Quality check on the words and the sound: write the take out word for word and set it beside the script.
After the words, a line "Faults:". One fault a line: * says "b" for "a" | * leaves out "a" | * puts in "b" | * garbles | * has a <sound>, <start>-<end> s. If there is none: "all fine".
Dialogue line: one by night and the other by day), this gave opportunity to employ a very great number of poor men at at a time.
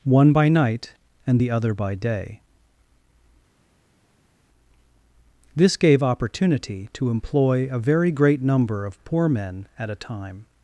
one by night and the other by day), this gave opportunity to employ a very great number of poor men at a time.
Faults:
* leaves out "at"